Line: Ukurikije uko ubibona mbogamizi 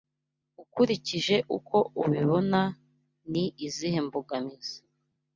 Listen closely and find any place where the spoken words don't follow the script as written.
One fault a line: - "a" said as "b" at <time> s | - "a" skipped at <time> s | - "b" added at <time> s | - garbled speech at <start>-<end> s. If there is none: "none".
- "ni izihe" added at 3.3 s